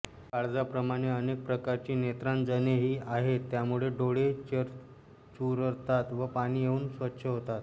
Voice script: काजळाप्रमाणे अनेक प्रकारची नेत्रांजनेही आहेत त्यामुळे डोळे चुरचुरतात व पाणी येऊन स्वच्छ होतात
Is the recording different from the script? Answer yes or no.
no